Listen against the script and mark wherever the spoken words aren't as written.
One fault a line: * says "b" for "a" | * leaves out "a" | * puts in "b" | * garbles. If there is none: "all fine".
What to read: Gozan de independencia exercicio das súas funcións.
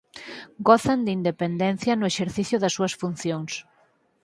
* puts in "no"